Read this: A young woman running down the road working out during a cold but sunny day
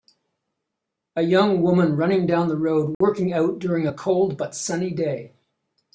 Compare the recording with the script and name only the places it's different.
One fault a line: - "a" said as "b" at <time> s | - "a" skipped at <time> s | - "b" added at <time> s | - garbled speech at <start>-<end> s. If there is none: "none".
none